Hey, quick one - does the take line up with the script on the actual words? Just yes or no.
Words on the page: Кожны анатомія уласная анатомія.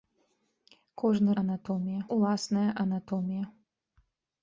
yes